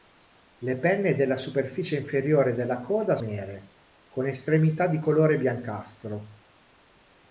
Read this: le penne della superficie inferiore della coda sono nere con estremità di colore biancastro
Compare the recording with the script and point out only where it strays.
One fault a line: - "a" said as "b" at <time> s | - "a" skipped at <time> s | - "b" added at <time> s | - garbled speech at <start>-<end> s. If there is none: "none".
- "sono" skipped at 3.2 s